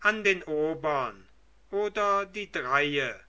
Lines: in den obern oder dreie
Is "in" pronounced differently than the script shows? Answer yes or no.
yes